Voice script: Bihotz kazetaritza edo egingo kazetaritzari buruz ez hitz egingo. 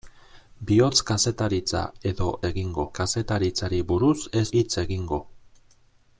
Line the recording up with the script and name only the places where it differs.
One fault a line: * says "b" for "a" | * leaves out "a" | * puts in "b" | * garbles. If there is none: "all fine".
all fine